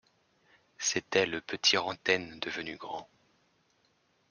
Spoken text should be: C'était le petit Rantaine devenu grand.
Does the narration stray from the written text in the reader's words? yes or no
no